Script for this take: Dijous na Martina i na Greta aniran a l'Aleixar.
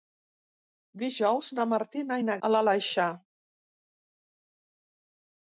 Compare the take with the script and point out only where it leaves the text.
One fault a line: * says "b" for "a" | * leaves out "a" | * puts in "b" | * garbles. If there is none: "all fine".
* leaves out "Greta aniran"